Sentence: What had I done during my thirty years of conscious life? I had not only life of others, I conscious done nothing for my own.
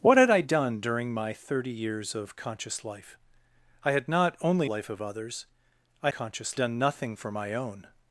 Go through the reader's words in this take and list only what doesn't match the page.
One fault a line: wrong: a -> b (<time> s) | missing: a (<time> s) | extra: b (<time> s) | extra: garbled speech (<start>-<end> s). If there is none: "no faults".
no faults